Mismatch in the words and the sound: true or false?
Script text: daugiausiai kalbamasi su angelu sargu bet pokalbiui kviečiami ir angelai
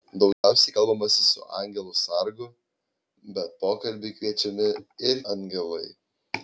true